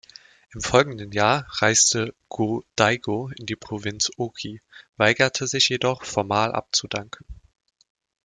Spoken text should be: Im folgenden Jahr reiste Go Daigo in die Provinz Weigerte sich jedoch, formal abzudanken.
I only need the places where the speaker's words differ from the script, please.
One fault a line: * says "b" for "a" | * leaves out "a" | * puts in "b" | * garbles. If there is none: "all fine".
* puts in "Oki"